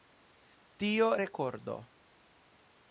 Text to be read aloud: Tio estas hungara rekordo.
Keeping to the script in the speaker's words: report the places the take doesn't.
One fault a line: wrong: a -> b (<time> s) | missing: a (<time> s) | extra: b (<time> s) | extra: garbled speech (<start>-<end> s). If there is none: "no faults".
missing: estas hungara (1.1 s)